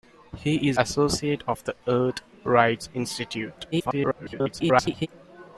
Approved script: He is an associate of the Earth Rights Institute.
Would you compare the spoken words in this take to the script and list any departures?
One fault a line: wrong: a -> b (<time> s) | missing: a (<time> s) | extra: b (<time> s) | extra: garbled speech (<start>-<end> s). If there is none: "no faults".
missing: an (0.8 s)
extra: garbled speech (3.7-5.1 s)